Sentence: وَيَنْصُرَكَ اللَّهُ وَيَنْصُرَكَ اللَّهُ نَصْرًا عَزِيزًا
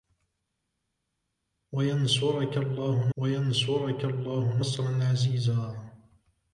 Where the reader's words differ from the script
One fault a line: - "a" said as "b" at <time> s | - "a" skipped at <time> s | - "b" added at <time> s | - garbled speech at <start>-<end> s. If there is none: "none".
none